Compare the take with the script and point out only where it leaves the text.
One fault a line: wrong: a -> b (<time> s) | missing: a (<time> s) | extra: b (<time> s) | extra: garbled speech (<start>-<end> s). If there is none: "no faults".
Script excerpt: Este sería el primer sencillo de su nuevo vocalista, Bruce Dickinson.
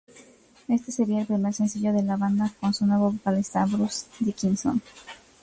extra: la banda con (2.0 s)